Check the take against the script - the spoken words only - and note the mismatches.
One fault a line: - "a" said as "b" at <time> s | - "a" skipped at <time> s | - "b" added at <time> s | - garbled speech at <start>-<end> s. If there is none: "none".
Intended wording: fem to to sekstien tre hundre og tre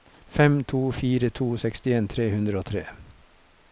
- "fire" added at 1.0 s